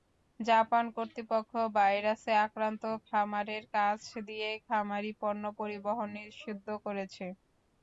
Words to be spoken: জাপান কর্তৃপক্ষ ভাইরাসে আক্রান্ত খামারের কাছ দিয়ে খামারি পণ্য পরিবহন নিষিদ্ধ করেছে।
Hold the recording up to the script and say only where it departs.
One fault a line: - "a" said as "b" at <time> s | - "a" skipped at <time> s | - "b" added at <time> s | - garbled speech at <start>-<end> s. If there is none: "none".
none